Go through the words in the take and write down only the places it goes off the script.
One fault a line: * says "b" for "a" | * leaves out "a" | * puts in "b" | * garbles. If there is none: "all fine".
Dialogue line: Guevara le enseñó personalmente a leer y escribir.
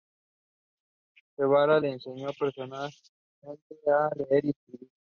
all fine